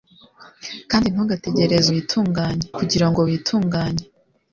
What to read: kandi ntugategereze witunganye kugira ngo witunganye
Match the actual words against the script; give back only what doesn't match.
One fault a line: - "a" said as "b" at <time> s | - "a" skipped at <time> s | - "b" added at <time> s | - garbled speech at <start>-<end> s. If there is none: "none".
none